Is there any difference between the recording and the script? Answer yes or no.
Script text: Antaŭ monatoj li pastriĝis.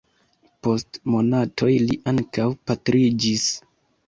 yes